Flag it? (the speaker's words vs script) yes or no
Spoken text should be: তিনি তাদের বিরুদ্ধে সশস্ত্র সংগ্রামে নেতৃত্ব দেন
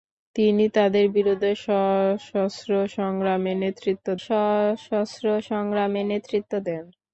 yes